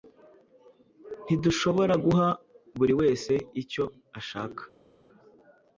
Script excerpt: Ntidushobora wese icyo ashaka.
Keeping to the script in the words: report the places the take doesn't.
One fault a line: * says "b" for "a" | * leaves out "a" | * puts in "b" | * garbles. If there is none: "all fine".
* puts in "guha buri"